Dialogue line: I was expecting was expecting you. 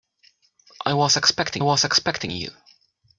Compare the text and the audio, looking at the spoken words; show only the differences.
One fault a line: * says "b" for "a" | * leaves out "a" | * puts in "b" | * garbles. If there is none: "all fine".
all fine